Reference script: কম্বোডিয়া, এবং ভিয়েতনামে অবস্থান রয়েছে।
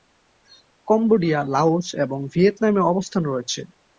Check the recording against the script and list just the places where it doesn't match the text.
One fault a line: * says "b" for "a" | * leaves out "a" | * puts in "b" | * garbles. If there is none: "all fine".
* puts in "লাওস"